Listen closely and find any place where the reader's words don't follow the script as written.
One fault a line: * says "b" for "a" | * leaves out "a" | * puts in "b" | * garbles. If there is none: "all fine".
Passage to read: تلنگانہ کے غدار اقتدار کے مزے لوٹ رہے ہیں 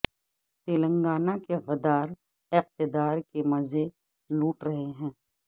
all fine